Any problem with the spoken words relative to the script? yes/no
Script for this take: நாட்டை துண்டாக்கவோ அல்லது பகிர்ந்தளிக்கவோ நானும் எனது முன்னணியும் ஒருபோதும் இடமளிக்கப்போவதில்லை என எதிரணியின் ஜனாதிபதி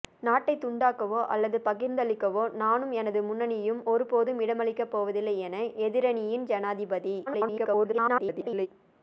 yes